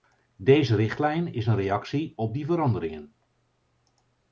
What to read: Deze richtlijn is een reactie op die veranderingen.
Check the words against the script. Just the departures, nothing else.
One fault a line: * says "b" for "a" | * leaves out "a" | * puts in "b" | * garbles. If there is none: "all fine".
all fine